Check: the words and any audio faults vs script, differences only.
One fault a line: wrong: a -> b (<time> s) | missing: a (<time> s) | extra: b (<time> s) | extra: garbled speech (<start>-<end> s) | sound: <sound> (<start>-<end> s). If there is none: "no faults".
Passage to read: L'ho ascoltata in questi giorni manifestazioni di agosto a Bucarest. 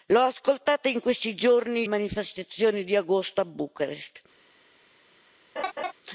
sound: laugh (5.6-5.9 s)